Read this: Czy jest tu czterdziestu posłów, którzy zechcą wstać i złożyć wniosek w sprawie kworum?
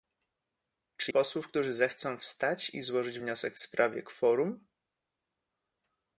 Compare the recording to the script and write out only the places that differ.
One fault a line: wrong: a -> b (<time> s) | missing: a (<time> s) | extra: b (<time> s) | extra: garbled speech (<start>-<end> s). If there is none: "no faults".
missing: jest tu czterdziestu (1.1 s)